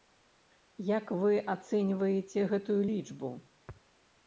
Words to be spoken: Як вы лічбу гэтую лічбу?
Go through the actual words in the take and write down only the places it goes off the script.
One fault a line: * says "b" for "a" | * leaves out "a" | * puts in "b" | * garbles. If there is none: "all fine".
* says "ацэньваеце" for "лічбу"